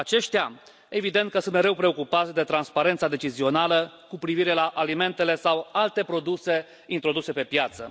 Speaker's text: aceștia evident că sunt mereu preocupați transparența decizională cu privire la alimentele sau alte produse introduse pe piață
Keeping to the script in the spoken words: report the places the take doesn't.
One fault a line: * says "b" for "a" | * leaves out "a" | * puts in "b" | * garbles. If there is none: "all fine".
* puts in "de"